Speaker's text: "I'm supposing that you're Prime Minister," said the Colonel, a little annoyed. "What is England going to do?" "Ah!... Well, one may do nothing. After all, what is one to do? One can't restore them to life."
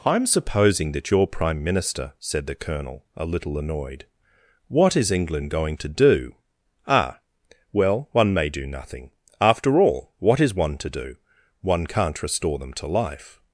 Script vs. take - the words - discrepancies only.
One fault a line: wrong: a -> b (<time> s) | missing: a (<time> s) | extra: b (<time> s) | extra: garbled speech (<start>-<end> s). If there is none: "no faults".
no faults